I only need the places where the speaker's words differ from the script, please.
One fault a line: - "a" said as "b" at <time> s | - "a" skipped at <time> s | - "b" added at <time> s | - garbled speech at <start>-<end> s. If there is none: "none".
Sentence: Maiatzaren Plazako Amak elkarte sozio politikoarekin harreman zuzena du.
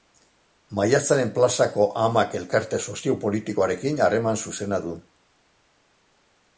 none